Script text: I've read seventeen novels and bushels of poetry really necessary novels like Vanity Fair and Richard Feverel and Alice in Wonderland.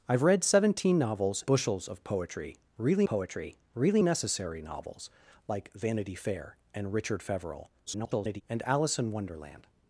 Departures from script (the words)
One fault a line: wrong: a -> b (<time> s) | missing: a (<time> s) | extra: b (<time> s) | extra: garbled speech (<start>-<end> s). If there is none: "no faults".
missing: and (1.4 s)
extra: poetry really (3.0 s)
extra: garbled speech (7.9-8.4 s)